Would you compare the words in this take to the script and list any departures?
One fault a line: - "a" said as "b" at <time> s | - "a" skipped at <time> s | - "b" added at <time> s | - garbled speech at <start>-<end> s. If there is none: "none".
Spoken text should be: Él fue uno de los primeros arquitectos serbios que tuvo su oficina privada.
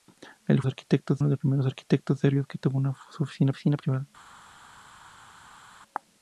- "fue" said as "arquitectos" at 0.7 s
- "oficina" added at 3.5 s